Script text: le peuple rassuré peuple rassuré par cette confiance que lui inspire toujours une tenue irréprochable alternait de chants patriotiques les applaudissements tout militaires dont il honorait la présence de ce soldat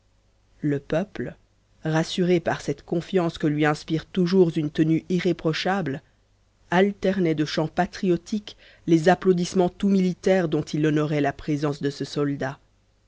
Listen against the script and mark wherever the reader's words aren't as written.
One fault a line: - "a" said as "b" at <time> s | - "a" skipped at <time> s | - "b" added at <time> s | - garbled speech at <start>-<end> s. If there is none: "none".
- "peuple rassuré" skipped at 2.4 s